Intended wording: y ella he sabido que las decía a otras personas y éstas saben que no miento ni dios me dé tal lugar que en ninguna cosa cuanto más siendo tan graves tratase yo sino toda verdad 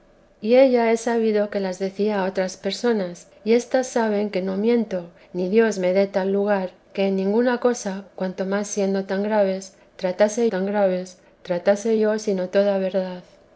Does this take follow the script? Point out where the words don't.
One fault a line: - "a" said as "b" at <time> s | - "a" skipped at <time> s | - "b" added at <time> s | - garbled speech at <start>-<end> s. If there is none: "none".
- "tan graves tratase" added at 10.5 s